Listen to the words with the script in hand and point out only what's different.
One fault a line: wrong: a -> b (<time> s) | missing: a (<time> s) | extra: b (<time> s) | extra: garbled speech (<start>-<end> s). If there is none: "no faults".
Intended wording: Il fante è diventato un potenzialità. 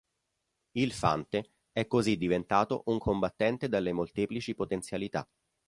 extra: così (1.9 s)
extra: combattente dalle molteplici (3.0 s)